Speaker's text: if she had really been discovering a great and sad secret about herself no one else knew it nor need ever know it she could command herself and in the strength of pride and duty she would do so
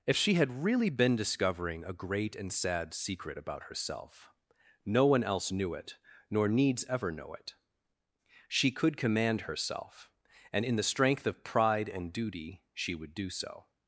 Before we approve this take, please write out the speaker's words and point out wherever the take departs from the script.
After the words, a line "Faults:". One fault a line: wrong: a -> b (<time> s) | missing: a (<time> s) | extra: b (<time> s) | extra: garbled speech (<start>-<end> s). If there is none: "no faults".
if she had really been discovering a great and sad secret about herself no one else knew it nor needs ever know it she could command herself and in the strength of pride and duty she would do so
Faults:
wrong: need -> needs (6.5 s)